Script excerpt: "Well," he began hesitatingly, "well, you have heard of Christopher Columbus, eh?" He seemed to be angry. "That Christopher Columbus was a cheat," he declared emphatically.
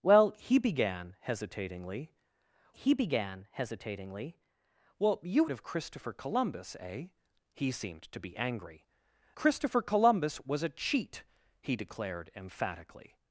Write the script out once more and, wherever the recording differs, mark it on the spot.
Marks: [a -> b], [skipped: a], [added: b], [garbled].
"Well," he began hesitatingly, [added: he began hesitatingly] "well, you [skipped: have heard] of Christopher Columbus, eh?" He seemed to be angry. [skipped: "That] Christopher Columbus was a cheat," he declared emphatically.